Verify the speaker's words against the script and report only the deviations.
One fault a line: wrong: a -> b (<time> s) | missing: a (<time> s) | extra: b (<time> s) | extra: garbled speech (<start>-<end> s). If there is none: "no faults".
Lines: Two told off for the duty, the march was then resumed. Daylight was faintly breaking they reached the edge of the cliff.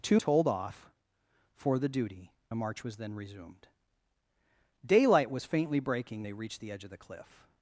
no faults